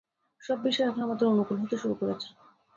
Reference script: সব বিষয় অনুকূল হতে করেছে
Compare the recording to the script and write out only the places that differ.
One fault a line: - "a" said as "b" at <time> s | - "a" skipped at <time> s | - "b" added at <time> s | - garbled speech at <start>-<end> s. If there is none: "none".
- "এখন আমাদের" added at 0.9 s
- "শুরু" added at 1.8 s